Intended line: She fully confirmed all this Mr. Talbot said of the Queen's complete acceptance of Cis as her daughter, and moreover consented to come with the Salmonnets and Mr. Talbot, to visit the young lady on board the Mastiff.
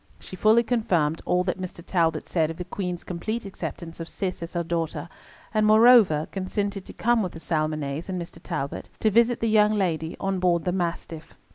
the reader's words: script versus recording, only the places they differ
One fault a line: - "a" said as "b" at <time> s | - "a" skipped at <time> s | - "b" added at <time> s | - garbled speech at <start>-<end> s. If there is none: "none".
- "this" said as "that" at 1.4 s